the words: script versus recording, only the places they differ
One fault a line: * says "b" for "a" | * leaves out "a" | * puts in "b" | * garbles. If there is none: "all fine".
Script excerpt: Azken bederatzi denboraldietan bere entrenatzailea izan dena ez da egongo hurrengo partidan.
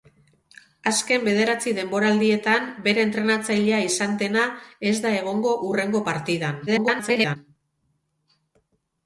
* garbles